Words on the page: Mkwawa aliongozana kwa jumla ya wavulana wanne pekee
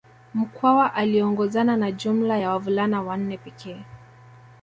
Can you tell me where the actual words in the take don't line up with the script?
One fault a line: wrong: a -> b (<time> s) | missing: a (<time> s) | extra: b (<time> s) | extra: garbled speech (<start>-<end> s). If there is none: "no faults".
wrong: kwa -> na (1.8 s)